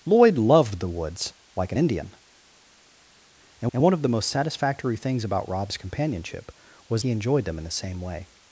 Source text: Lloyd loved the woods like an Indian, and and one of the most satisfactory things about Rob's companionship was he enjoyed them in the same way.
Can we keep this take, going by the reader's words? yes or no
yes